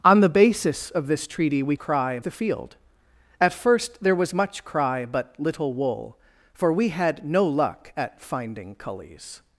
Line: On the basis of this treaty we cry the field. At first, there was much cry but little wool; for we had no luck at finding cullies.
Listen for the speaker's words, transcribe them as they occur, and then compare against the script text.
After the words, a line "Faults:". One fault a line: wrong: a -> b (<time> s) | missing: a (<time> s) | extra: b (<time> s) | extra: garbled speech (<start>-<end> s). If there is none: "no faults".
On the basis of this treaty we cry the field. At first, there was much cry but little wool; for we had no luck at finding cullies.
Faults:
no faults